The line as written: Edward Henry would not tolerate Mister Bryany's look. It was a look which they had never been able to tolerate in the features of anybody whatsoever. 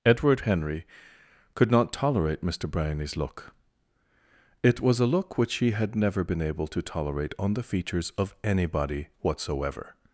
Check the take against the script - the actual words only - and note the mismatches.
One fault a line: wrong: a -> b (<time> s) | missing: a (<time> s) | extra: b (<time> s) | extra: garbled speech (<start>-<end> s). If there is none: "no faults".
wrong: would -> could (1.5 s)
wrong: they -> he (5.5 s)
wrong: in -> on (7.4 s)